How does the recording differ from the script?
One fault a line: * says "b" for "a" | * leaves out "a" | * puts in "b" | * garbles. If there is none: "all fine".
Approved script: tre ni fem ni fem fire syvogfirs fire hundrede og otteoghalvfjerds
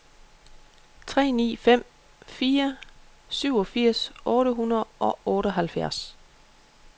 * leaves out "ni fem"
* says "otte" for "fire"